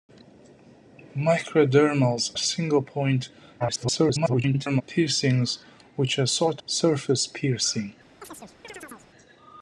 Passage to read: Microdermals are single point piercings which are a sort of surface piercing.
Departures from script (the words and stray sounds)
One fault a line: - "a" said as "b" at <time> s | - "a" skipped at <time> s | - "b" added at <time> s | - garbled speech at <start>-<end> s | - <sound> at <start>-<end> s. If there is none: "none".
- "are" skipped at 2.3 s
- garbled speech at 3.6-4.8 s
- "of" skipped at 6.6 s
- chirp at 8.2-9.1 s